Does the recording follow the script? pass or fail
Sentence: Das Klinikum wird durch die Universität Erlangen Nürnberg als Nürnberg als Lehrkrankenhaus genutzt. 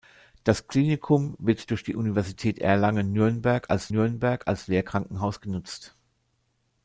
pass